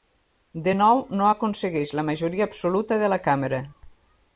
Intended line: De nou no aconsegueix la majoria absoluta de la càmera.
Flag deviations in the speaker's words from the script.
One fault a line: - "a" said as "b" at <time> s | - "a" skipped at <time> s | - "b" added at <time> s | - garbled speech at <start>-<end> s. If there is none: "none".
none